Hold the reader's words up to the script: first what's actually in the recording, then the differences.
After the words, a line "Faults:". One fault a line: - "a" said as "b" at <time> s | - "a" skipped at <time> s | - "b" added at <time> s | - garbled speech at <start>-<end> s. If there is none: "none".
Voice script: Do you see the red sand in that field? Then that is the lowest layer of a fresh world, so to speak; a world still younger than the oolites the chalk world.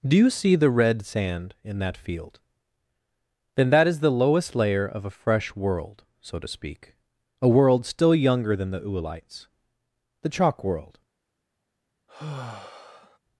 Do you see the red sand in that field? Then that is the lowest layer of a fresh world, so to speak; a world still younger than the oolites the chalk world.
Faults:
none